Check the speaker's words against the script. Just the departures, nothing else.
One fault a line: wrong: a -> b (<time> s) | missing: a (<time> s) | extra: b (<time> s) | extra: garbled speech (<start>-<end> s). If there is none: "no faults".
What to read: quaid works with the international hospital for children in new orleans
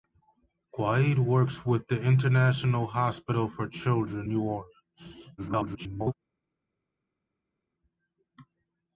missing: in (4.3 s)
extra: garbled speech (5.4-6.1 s)